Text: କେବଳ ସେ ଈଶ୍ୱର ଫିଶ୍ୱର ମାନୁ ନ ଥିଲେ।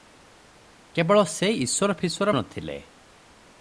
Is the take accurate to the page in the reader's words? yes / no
no